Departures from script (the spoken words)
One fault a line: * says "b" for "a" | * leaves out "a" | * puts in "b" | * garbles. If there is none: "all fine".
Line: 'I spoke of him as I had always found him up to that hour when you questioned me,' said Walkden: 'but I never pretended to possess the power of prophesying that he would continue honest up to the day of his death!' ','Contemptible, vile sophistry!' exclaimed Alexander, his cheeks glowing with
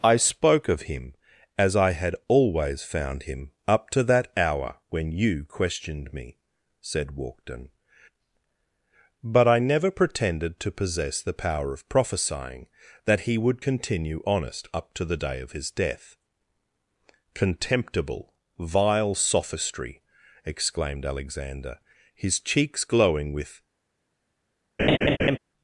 all fine